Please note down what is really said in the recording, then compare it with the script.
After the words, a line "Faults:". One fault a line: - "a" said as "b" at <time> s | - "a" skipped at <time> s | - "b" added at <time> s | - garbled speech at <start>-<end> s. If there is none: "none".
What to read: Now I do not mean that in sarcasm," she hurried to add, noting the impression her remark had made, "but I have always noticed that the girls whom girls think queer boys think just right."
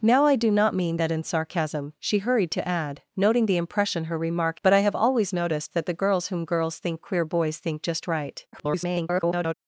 Now I do not mean that in sarcasm," she hurried to add, noting the impression her remark "but I have always noticed that the girls whom girls think queer boys think just right." [garbled]
Faults:
- "had made" skipped at 4.6 s
- garbled speech at 8.5-9.5 s